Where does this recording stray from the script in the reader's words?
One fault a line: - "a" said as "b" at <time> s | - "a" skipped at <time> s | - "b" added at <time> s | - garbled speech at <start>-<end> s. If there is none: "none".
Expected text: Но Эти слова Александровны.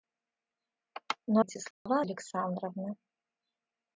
none